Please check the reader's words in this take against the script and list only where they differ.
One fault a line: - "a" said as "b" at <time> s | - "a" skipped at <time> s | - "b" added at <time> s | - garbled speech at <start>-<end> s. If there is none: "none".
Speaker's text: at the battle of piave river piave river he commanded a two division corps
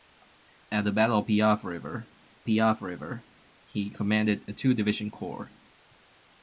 none